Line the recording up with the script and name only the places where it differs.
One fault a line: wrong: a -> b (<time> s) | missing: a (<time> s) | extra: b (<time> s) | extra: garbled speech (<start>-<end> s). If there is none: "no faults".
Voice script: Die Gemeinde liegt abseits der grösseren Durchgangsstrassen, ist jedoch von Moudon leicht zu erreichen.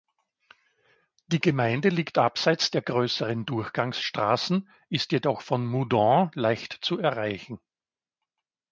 no faults